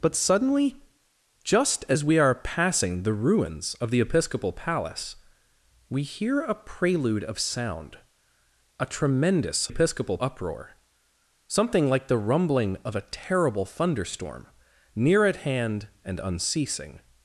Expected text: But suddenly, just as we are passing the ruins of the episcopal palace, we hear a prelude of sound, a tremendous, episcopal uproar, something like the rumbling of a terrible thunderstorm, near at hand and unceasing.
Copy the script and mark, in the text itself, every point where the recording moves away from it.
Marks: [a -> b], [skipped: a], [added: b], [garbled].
But suddenly, just as we are passing the ruins of the episcopal palace, we hear a prelude of sound, a tremendous, episcopal uproar, something like the rumbling of a terrible thunderstorm, near at hand and unceasing.